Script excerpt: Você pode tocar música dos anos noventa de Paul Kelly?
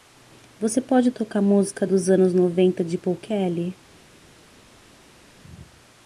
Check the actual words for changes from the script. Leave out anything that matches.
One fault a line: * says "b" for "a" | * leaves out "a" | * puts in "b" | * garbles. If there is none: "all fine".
all fine